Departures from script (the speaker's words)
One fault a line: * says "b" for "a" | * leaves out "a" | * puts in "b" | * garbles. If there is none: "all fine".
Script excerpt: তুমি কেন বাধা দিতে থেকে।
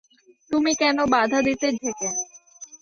all fine